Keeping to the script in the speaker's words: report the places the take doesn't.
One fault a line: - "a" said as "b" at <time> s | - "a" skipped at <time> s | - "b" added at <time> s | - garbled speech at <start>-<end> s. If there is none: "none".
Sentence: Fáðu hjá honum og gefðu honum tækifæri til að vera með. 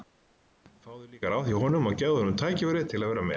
- "líka ráð" added at 1.1 s